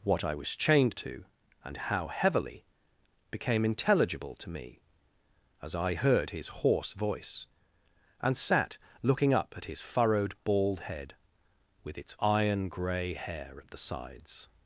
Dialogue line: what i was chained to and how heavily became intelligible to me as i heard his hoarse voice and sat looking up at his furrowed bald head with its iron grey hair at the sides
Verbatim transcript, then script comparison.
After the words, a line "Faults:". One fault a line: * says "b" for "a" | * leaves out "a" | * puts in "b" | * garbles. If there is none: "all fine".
what i was chained to and how heavily became intelligible to me as i heard his hoarse voice and sat looking up at his furrowed bald head with its iron grey hair at the sides
Faults:
all fine